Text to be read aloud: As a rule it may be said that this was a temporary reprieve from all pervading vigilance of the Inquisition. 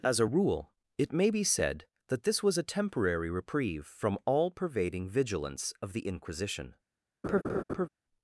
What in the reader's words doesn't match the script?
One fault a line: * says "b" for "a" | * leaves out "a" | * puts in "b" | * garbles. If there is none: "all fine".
all fine